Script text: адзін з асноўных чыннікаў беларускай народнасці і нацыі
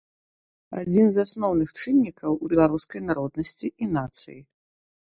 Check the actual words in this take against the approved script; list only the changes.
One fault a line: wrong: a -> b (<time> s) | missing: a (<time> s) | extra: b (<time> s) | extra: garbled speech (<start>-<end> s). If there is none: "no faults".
no faults